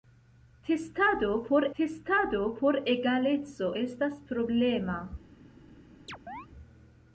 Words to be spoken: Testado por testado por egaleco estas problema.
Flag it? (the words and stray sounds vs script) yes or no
yes